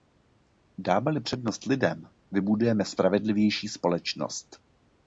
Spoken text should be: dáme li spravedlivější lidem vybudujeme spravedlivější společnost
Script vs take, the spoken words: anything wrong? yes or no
yes